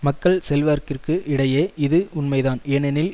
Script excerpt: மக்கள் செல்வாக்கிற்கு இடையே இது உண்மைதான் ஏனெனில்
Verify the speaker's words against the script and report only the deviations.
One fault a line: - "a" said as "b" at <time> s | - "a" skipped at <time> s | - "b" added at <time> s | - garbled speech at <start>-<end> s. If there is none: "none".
none